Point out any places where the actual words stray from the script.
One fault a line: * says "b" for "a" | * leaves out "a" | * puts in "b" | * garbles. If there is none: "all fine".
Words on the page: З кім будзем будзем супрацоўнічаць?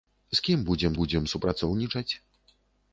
all fine